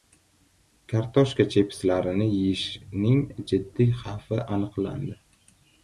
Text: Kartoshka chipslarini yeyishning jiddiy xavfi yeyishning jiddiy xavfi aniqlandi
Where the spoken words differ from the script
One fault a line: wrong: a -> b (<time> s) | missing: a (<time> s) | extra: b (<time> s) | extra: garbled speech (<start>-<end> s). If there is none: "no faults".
missing: yeyishning jiddiy xavfi (4.4 s)